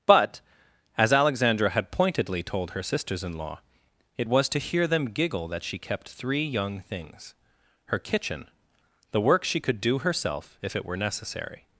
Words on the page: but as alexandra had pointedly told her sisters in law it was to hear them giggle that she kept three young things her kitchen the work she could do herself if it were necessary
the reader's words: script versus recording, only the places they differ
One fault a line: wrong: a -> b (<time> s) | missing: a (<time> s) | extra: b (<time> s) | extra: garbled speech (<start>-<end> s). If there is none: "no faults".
no faults